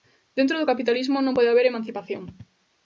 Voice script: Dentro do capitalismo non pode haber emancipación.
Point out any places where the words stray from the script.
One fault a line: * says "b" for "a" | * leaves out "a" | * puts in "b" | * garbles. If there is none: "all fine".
all fine